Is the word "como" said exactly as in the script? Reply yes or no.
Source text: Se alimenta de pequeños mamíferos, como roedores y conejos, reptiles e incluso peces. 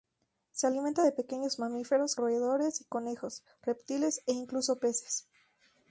no